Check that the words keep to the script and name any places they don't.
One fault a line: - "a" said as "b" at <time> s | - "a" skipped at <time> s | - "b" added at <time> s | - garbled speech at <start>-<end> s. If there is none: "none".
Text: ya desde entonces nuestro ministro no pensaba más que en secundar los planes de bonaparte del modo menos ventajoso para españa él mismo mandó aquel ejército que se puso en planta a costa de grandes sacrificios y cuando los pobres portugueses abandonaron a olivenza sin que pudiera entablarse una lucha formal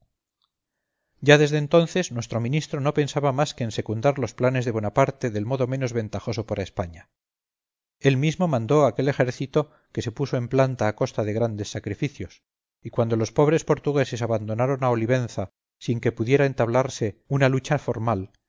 none